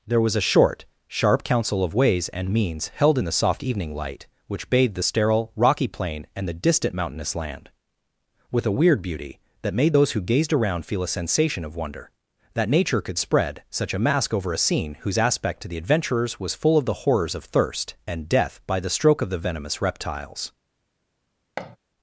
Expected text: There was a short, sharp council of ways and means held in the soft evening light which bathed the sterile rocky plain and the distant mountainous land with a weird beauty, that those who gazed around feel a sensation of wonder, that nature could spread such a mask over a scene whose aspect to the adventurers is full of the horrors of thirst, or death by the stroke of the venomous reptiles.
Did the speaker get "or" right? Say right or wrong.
wrong